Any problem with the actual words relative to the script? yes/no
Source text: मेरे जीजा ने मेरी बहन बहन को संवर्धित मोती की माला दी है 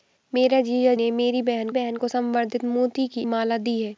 no